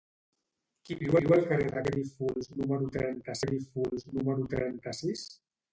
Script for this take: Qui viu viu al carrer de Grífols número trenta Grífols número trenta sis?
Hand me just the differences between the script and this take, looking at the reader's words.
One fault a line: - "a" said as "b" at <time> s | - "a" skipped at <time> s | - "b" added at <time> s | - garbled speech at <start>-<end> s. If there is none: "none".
none